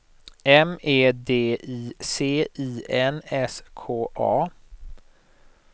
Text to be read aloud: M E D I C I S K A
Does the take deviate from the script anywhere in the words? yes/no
yes